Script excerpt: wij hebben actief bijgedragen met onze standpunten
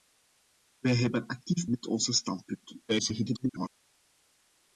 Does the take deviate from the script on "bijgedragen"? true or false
true